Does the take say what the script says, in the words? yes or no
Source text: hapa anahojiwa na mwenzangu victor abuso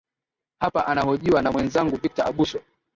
yes